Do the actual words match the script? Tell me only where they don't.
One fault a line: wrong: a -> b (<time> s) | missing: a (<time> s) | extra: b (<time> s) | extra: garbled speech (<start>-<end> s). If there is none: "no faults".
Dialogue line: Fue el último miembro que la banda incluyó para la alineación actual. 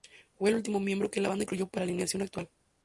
no faults